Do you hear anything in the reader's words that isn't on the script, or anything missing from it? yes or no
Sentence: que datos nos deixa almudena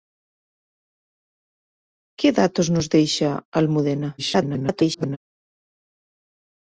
yes